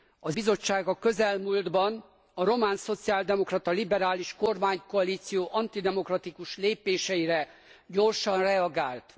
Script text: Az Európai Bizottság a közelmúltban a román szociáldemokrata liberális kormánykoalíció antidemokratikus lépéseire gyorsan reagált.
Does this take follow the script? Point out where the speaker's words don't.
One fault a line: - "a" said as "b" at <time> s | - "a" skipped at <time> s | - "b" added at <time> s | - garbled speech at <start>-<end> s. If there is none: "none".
- "Európai" skipped at 0.4 s